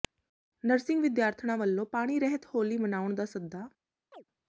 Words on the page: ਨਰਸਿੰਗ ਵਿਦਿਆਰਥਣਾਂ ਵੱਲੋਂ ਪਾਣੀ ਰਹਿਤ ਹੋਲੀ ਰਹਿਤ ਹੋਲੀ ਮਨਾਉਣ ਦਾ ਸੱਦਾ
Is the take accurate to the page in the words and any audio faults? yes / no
no